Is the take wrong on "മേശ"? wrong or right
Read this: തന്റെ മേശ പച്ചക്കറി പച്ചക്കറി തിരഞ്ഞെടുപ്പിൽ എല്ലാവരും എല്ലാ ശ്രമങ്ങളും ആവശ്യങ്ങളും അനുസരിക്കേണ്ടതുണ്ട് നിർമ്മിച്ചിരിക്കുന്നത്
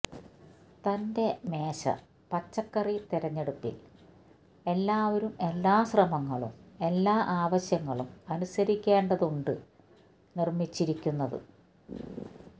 right